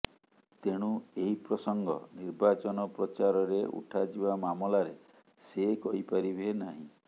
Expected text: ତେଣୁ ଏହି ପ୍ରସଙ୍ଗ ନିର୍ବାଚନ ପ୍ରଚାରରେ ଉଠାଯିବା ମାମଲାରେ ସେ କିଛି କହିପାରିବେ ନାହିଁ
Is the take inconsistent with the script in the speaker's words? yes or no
yes